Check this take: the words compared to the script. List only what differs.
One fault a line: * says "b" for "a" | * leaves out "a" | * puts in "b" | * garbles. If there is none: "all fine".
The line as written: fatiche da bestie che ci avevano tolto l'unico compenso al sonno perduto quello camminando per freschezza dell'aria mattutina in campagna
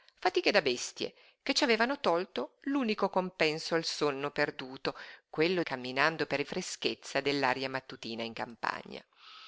all fine